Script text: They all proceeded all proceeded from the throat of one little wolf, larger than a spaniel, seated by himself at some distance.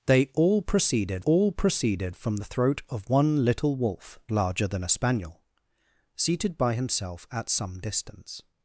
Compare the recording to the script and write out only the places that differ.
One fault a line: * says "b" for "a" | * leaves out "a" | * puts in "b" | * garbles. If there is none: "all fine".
all fine